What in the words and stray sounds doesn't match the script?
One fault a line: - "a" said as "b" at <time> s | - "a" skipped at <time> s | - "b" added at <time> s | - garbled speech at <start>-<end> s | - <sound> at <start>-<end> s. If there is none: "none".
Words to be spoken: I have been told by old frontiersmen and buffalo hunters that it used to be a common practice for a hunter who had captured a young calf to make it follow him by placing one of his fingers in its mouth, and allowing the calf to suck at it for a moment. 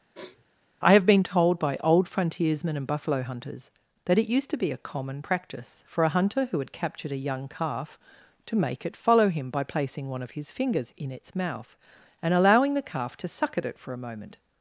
- sniff at 0.1-0.4 s